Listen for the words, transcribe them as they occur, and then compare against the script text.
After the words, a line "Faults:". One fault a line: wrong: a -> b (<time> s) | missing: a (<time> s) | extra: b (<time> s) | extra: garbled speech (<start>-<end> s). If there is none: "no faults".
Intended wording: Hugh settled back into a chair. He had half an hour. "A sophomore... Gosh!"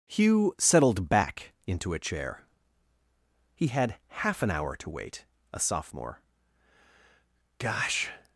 Hugh settled back into a chair. He had half an hour to wait. "A sophomore... Gosh!"
Faults:
extra: to wait (4.7 s)